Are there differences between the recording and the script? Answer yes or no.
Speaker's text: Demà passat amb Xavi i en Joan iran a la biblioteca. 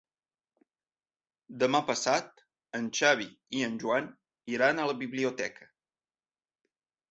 yes